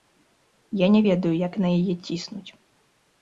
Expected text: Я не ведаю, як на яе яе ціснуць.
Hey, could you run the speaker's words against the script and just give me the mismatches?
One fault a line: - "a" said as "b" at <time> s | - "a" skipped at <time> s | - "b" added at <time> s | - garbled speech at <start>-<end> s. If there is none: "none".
- "яе" skipped at 1.9 s